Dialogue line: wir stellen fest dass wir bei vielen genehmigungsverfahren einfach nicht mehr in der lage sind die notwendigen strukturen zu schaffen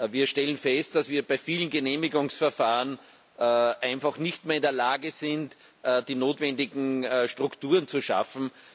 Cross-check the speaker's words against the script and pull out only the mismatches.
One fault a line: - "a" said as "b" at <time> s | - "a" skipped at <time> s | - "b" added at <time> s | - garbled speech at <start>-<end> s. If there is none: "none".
none